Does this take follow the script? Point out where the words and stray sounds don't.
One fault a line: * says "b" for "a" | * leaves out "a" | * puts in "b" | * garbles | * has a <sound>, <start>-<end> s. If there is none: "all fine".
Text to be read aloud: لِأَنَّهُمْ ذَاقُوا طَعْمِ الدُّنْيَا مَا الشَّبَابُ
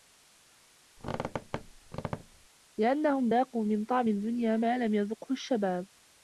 * has a squeak, 1.0-2.5 s
* puts in "مِنْ"
* puts in "لَمْ يَذُقْهُ"